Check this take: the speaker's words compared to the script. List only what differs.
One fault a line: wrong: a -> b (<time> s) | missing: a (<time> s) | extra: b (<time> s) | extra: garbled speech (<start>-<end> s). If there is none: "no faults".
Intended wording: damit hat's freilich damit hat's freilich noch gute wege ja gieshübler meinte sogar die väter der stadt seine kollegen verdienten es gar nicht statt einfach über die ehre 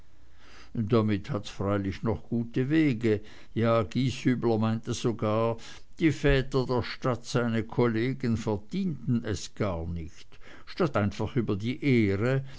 missing: damit hat's freilich (2.0 s)